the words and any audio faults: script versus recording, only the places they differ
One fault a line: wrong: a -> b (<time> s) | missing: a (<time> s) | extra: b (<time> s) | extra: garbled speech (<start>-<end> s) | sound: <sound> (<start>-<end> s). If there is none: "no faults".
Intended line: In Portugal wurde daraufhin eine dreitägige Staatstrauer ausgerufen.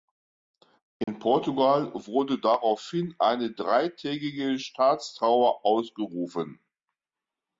sound: dropout (1.0-1.1 s)